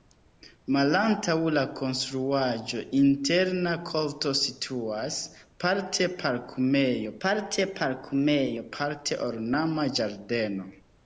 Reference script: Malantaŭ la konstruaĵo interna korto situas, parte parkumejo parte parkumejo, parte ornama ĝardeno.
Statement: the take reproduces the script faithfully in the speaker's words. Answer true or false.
true